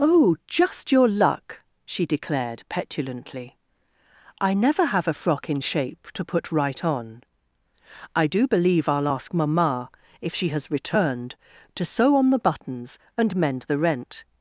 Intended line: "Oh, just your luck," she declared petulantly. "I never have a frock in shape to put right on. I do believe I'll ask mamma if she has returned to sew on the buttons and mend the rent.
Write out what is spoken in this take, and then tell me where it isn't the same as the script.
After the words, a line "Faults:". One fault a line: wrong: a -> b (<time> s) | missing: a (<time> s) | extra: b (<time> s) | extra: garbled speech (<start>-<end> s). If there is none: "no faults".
"Oh, just your luck," she declared petulantly. "I never have a frock in shape to put right on. I do believe I'll ask mamma if she has returned to sew on the buttons and mend the rent.
Faults:
no faults